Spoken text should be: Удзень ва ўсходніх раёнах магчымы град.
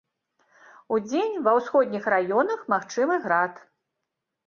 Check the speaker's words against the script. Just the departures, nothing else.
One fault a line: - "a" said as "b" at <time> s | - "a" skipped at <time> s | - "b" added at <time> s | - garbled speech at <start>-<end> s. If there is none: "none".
none